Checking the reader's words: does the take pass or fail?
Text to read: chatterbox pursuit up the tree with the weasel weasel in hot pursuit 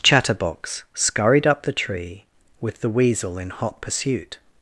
fail